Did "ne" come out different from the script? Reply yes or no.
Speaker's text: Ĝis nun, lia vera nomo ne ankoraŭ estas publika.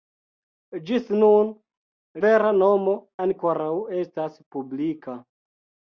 yes